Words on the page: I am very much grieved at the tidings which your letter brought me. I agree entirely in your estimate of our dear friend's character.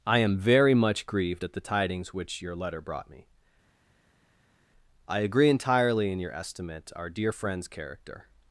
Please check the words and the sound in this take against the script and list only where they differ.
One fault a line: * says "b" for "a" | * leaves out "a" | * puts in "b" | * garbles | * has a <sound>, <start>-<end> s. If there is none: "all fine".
* leaves out "of"